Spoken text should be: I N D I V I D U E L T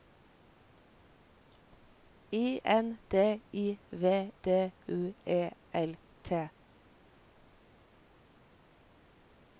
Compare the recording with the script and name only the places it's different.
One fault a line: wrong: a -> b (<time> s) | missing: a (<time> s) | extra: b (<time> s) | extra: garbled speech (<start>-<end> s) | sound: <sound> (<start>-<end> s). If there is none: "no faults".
missing: I (4.3 s)